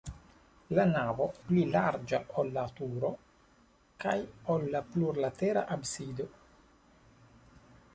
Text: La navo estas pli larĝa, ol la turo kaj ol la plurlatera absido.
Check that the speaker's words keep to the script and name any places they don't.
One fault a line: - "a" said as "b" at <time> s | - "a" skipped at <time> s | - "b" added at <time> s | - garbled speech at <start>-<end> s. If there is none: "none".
- "estas" skipped at 1.2 s